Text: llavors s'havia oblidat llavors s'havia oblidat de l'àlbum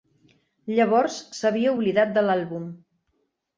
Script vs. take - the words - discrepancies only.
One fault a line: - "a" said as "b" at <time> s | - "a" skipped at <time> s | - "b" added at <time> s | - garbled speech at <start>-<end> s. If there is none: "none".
- "llavors s'havia oblidat" skipped at 2.1 s